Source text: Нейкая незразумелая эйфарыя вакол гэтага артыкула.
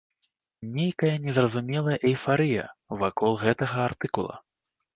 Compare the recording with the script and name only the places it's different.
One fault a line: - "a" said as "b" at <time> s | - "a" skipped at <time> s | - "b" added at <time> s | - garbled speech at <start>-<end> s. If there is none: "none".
none